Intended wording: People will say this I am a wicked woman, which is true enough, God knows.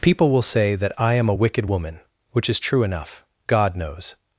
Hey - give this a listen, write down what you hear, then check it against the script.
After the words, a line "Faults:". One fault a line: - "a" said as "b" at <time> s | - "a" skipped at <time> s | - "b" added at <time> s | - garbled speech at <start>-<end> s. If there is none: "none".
People will say that I am a wicked woman, which is true enough, God knows.
Faults:
- "this" said as "that" at 0.7 s